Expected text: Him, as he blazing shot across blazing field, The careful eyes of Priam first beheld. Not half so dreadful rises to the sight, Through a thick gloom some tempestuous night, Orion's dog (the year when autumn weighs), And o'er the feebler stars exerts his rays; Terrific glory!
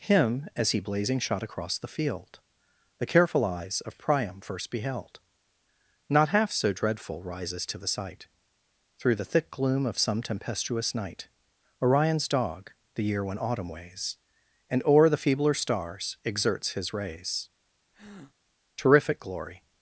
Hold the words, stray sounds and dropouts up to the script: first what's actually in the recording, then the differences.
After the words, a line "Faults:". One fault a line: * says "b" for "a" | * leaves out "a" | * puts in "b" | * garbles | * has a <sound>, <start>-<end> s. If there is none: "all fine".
Him, as he blazing shot across the field, The careful eyes of Priam first beheld. Not half so dreadful rises to the sight, Through the thick gloom of some tempestuous night, Orion's dog (the year when autumn weighs), And o'er the feebler stars exerts his rays; Terrific glory!
Faults:
* says "the" for "blazing"
* says "the" for "a"
* puts in "of"
* has a breath, 17.9-18.3 s